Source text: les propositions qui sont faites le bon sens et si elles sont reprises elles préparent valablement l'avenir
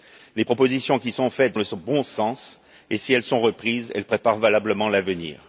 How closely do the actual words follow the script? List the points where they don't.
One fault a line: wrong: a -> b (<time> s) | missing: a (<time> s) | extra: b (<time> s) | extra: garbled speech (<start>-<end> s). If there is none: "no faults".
no faults